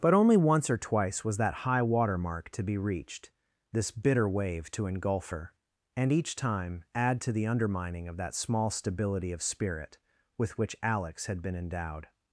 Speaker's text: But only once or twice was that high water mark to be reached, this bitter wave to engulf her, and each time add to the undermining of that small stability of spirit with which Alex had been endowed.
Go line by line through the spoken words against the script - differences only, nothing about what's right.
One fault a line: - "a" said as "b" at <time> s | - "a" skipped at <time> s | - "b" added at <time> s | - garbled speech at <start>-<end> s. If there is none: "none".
none